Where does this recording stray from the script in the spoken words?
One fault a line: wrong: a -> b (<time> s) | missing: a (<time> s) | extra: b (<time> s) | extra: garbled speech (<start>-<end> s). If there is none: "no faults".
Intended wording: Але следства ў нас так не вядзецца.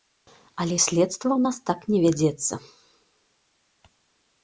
no faults